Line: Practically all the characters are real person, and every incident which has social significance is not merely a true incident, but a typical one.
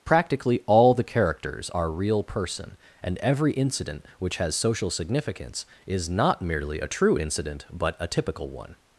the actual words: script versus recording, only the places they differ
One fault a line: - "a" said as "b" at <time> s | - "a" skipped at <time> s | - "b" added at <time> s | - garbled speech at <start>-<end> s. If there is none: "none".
none